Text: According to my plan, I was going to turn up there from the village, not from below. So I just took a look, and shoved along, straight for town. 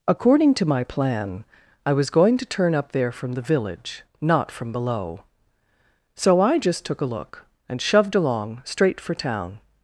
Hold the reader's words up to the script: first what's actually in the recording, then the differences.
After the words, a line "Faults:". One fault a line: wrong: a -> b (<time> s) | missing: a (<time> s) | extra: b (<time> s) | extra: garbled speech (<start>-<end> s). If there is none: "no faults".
According to my plan, I was going to turn up there from the village, not from below. So I just took a look, and shoved along, straight for town.
Faults:
no faults